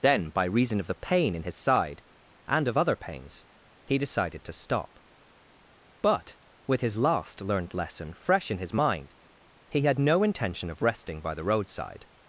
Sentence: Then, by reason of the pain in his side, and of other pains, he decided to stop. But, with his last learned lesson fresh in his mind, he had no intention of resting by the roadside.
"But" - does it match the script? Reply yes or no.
yes